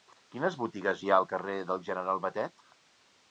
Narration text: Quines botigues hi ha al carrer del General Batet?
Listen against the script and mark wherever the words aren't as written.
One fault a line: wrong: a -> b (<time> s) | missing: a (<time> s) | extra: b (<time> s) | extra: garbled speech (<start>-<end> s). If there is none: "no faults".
no faults